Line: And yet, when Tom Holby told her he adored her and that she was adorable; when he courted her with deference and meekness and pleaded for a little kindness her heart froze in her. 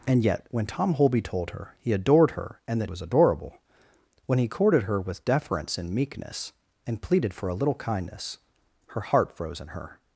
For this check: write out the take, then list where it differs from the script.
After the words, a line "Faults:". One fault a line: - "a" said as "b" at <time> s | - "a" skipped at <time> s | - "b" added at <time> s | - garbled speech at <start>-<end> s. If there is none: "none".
And yet, when Tom Holby told her he adored her and that was adorable; when he courted her with deference and meekness and pleaded for a little kindness her heart froze in her.
Faults:
- "she" skipped at 2.9 s